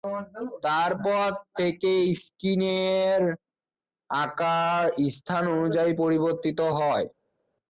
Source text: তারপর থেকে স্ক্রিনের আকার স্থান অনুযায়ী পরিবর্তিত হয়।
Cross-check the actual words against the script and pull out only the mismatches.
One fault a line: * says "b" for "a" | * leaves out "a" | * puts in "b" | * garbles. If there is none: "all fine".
all fine